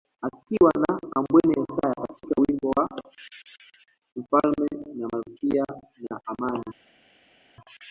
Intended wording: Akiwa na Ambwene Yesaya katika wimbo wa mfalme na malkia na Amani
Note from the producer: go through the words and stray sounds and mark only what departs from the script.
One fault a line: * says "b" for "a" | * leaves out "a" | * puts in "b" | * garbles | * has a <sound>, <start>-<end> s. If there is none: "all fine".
all fine